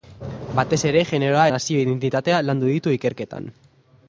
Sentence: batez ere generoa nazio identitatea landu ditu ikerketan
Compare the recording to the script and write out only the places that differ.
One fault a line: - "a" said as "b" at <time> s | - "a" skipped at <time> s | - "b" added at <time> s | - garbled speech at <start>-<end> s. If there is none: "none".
none